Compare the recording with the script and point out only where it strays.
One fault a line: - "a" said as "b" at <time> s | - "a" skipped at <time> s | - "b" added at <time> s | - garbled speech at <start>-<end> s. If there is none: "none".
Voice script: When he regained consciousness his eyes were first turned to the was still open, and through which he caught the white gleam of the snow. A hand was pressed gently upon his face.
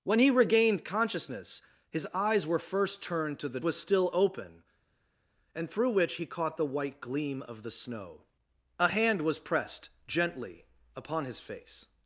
none